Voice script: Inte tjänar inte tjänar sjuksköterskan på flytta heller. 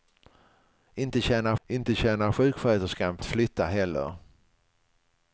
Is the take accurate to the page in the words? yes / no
yes